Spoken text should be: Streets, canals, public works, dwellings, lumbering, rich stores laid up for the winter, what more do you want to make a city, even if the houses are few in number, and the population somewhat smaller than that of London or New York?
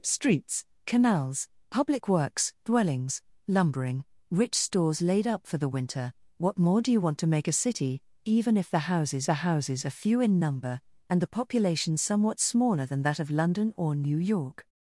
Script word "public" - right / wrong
right